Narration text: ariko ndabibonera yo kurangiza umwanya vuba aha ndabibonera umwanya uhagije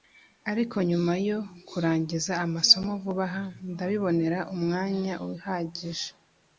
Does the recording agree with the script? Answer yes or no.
no